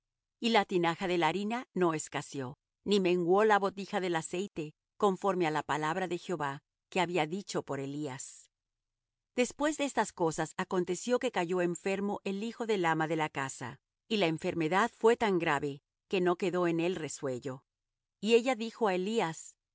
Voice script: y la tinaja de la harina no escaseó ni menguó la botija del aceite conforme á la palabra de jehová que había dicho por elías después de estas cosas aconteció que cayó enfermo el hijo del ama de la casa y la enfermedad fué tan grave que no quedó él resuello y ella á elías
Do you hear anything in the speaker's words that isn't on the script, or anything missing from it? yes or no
yes